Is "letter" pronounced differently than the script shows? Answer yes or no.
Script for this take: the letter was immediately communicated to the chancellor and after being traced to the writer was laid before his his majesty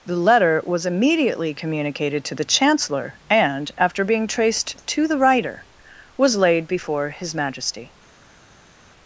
no